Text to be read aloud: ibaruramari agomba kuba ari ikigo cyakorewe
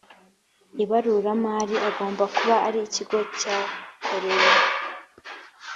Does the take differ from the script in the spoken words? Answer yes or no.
no